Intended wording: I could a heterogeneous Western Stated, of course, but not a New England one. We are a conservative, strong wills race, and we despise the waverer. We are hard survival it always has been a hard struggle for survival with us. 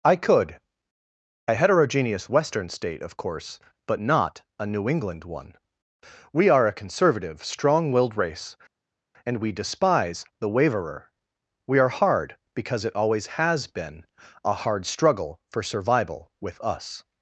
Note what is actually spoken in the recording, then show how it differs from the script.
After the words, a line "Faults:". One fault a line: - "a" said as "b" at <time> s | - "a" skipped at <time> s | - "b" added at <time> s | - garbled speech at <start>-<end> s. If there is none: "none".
I could a heterogeneous Western State, of course, but not a New England one. We are a conservative, strong willed race, and we despise the waverer. We are hard because it always has been a hard struggle for survival with us.
Faults:
- "Stated" said as "State" at 2.7 s
- "wills" said as "willed" at 7.9 s
- "survival" said as "because" at 12.5 s